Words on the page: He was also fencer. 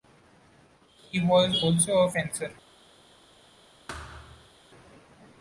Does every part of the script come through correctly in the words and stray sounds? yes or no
no